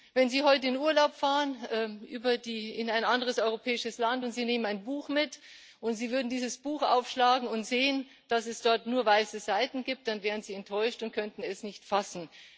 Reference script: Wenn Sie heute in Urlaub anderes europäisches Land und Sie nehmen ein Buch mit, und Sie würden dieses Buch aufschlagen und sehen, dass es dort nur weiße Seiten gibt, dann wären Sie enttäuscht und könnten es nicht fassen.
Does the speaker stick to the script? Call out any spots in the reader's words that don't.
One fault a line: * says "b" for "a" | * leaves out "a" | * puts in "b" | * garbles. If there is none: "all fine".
* puts in "fahren in ein"